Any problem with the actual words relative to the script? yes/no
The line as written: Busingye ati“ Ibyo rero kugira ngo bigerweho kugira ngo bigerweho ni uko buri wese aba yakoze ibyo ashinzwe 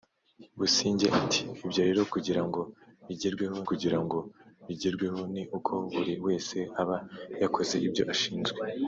no